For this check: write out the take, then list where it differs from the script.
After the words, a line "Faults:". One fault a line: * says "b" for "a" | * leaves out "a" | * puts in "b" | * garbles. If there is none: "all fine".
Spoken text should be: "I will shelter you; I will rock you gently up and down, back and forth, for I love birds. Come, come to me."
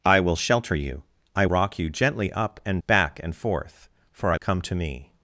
"I will shelter you; I rock you gently up and back and forth, for I come to me."
Faults:
* leaves out "will"
* leaves out "down"
* leaves out "love birds Come"